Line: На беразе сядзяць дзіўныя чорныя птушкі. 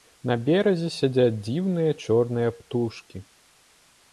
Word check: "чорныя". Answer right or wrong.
right